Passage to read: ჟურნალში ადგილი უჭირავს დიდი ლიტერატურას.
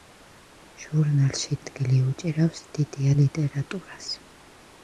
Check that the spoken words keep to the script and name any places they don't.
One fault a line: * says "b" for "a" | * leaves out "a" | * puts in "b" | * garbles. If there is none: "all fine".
all fine